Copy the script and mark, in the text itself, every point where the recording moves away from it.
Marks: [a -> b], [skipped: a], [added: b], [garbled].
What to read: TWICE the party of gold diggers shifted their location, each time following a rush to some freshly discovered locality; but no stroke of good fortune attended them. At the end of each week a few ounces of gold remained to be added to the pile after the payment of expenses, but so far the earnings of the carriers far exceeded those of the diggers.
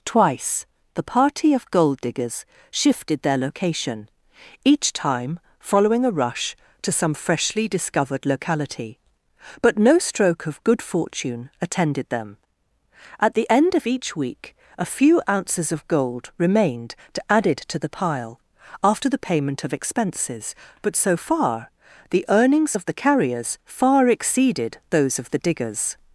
TWICE the party of gold diggers shifted their location, each time following a rush to some freshly discovered locality; but no stroke of good fortune attended them. At the end of each week a few ounces of gold remained to [skipped: be] added to the pile after the payment of expenses, but so far the earnings of the carriers far exceeded those of the diggers.